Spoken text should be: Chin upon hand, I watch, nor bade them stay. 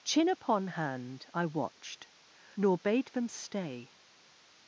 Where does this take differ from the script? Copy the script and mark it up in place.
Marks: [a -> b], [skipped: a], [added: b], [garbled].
Chin upon hand, I [watch, -> watched] nor bade them stay.